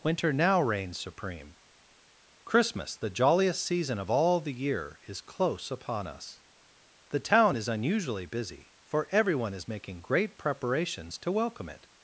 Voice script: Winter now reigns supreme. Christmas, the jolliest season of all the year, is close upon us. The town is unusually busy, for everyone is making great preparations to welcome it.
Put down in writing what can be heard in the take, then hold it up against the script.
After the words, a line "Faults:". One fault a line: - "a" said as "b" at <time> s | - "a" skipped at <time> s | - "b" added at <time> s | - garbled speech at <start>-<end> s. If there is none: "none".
Winter now reigns supreme. Christmas, the jolliest season of all the year, is close upon us. The town is unusually busy, for everyone is making great preparations to welcome it.
Faults:
none